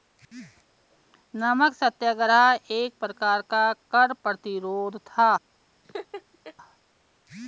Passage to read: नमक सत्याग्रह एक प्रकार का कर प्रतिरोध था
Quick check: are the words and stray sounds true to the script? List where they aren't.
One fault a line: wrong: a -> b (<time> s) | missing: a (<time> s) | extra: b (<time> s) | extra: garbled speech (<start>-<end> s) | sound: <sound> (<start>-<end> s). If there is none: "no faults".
sound: laugh (5.8-6.5 s)